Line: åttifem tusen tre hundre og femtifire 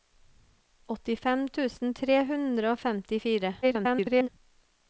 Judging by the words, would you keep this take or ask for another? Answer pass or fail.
fail